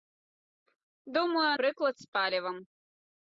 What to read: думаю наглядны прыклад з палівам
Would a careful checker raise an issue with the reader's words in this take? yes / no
yes